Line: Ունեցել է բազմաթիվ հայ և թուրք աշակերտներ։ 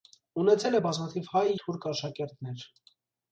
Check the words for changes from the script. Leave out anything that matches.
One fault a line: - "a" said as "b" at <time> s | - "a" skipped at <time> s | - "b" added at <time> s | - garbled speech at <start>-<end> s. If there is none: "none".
- "և" skipped at 1.4 s